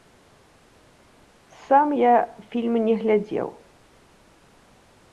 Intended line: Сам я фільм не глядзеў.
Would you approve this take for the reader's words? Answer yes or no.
yes